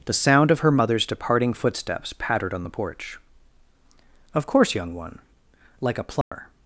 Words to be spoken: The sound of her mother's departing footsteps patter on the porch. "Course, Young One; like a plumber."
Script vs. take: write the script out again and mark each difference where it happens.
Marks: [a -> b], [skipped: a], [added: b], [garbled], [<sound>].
The sound of her mother's departing footsteps [patter -> pattered] on the porch. [added: Of] "Course, Young One; like a plumber." [dropout]